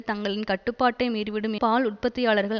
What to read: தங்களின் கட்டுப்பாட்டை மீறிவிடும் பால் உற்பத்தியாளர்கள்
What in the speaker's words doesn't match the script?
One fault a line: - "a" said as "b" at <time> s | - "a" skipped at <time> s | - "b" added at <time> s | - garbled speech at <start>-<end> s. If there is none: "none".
none